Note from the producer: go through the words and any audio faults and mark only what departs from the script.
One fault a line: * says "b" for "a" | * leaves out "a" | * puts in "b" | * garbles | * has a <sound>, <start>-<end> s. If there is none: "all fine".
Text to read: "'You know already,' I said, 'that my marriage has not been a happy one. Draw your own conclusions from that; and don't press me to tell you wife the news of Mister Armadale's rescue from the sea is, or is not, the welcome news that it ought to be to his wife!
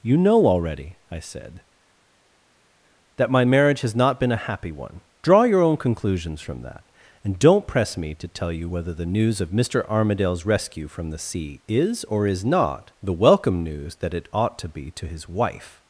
* says "whether" for "wife"